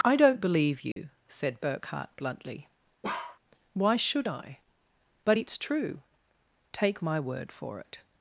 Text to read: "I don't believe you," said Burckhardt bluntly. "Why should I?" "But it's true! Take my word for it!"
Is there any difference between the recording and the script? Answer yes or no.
no